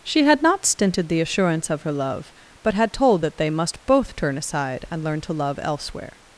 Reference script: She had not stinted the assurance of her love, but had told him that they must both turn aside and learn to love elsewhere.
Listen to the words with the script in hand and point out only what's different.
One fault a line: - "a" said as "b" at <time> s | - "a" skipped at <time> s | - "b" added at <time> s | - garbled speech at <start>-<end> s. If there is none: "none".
- "him" skipped at 3.2 s